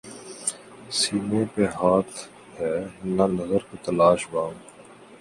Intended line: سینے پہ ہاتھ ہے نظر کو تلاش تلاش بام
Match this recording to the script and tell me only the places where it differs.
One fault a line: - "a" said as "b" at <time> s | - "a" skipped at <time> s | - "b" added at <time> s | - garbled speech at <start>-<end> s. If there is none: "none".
- "نہ" added at 3.1 s
- "تلاش" skipped at 4.2 s